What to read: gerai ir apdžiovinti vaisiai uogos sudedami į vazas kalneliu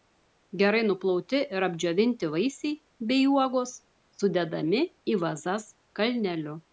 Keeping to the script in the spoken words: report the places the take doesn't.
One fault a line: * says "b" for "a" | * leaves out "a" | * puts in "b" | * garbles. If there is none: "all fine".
* puts in "nuplauti"
* puts in "bei"